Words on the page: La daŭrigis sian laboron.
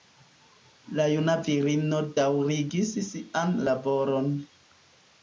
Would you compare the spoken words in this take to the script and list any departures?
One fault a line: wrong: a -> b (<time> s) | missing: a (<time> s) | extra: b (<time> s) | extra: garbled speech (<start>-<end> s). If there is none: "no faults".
extra: juna virino (1.1 s)